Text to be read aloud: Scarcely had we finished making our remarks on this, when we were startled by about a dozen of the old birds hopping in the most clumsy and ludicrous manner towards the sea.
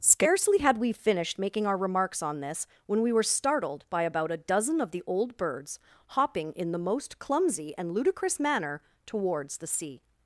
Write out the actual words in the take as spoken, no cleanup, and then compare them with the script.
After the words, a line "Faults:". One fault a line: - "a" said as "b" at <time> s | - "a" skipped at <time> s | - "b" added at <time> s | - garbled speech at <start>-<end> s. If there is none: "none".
Scarcely had we finished making our remarks on this, when we were startled by about a dozen of the old birds hopping in the most clumsy and ludicrous manner towards the sea.
Faults:
none